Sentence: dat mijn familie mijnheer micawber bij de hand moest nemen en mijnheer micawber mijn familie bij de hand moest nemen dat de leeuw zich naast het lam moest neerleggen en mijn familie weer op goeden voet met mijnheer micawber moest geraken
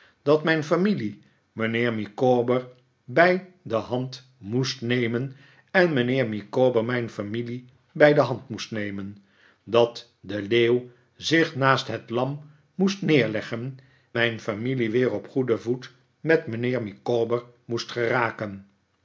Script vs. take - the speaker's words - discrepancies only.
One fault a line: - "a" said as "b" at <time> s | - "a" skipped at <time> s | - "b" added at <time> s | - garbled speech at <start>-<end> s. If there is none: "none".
- "en" skipped at 13.8 s